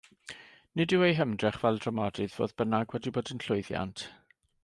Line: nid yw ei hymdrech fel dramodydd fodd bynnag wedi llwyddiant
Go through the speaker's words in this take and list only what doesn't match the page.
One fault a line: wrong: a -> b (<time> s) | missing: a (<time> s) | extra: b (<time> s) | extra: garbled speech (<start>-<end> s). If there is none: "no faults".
extra: bod yn (3.2 s)